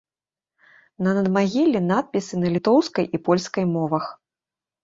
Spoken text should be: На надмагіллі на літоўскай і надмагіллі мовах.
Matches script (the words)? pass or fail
fail